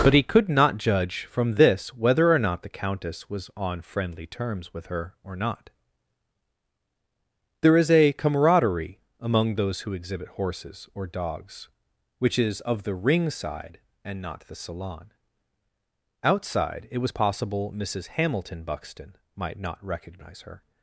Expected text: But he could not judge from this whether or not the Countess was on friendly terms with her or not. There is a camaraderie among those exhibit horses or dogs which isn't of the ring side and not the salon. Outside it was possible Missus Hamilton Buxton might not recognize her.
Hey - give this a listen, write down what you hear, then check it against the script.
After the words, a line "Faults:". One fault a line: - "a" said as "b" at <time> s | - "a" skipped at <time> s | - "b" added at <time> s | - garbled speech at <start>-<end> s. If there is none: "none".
But he could not judge from this whether or not the Countess was on friendly terms with her or not. There is a camaraderie among those who exhibit horses or dogs which is of the ring side and not the salon. Outside it was possible Missus Hamilton Buxton might not recognize her.
Faults:
- "who" added at 9.8 s
- "isn't" said as "is" at 12.4 s